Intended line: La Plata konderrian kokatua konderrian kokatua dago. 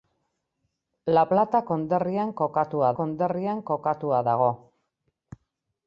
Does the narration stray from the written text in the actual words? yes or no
no